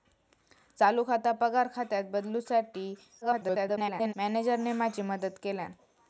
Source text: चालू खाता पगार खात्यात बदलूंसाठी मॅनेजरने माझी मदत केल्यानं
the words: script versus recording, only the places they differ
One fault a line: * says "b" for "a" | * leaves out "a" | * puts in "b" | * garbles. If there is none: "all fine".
* garbles